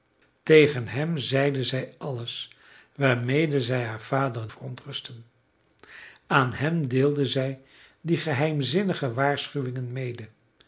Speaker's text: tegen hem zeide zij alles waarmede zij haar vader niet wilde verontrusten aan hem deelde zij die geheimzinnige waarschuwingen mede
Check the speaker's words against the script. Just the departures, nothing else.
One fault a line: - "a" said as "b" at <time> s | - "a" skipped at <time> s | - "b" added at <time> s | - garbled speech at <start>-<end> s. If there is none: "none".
- "niet wilde" skipped at 4.5 s